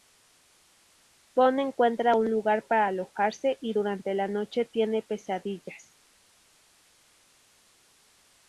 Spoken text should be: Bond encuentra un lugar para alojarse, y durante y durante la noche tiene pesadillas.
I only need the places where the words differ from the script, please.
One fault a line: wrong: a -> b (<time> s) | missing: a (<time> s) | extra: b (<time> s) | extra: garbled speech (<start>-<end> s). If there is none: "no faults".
missing: y durante (4.1 s)